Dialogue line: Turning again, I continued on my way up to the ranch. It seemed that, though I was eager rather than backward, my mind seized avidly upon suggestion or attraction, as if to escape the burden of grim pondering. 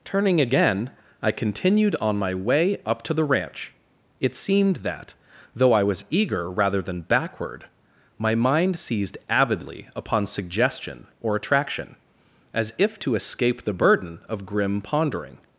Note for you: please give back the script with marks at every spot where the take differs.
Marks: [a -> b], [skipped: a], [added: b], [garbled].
Turning again, I continued on my way up to the ranch. It seemed that, though I was eager rather than backward, my mind seized avidly upon suggestion or attraction, as if to escape the burden of grim pondering.